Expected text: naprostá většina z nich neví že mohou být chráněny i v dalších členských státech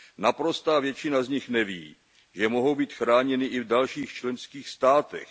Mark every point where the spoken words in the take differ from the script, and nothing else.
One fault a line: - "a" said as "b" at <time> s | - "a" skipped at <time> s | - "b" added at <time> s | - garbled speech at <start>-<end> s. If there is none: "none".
none